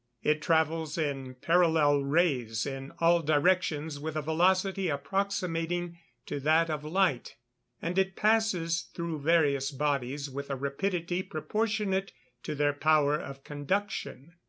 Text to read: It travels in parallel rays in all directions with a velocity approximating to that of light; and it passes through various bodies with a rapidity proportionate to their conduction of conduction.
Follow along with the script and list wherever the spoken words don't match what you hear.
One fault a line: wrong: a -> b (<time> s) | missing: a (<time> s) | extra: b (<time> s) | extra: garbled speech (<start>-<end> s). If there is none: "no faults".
wrong: conduction -> power (12.7 s)